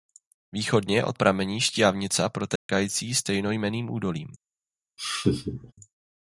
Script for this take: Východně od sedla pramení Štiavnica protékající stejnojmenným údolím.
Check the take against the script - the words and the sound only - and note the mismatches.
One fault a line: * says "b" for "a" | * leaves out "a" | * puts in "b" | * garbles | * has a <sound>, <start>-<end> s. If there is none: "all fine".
* leaves out "sedla"
* has a dropout, 2.6-2.7 s
* has a laugh, 5.0-5.7 s